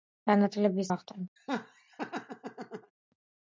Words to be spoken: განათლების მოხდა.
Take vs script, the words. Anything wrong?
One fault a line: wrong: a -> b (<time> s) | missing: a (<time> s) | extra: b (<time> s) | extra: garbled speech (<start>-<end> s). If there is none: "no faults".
no faults